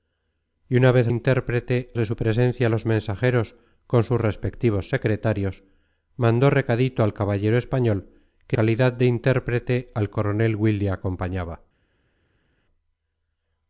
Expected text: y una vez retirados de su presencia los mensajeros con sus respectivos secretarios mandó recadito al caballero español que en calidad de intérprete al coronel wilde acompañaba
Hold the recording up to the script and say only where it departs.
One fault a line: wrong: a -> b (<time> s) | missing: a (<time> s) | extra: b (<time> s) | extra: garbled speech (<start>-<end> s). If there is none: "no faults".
wrong: retirados -> intérprete (1.1 s)
missing: en (8.6 s)